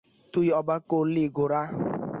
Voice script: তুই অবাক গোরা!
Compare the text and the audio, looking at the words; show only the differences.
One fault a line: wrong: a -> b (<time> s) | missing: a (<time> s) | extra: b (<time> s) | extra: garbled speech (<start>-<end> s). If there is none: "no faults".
extra: করলি (0.9 s)